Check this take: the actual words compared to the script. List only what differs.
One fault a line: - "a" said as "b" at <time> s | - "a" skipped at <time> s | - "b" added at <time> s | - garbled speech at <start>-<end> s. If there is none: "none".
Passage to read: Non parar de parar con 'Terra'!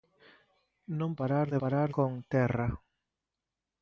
none